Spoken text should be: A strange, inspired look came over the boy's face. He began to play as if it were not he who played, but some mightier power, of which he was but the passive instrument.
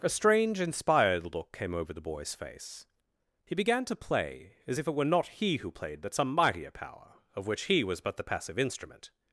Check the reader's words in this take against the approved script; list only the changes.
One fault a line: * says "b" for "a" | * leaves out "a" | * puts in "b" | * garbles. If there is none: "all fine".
all fine